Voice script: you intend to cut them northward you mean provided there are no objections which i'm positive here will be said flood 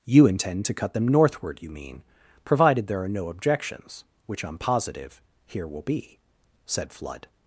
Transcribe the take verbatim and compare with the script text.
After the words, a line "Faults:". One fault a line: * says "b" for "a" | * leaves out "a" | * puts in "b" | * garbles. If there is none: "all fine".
you intend to cut them northward you mean provided there are no objections which i'm positive here will be said flood
Faults:
all fine